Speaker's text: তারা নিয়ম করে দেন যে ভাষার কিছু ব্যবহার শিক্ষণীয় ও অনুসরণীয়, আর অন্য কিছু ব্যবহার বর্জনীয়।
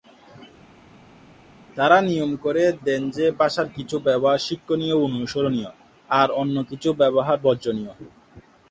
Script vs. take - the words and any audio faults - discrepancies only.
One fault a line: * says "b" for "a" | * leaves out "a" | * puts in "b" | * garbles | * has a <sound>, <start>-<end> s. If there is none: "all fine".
all fine